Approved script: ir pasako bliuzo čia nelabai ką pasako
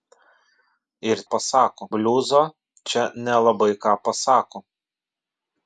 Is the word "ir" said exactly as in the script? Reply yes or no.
yes